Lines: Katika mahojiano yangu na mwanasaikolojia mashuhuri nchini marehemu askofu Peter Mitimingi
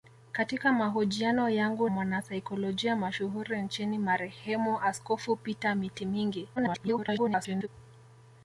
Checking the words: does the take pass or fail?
fail